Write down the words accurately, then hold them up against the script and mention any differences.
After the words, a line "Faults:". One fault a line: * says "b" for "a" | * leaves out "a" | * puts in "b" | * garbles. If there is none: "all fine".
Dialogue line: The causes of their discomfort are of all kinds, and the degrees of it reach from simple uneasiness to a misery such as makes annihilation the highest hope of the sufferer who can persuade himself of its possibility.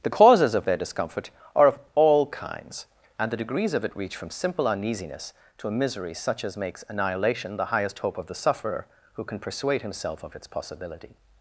The causes of their discomfort are of all kinds, and the degrees of it reach from simple uneasiness to a misery such as makes annihilation the highest hope of the sufferer who can persuade himself of its possibility.
Faults:
all fine